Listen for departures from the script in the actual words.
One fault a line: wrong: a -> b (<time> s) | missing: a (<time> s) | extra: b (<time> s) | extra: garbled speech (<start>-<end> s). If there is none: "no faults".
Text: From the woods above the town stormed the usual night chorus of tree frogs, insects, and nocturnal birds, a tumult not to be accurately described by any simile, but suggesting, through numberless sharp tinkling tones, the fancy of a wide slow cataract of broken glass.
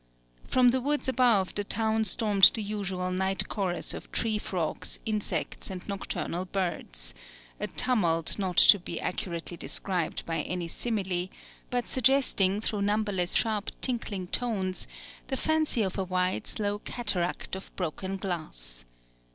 no faults